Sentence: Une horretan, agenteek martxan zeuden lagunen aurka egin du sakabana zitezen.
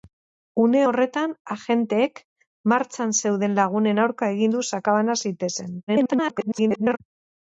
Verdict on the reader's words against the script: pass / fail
fail